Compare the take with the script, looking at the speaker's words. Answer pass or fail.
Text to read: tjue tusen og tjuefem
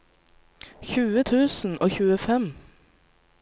pass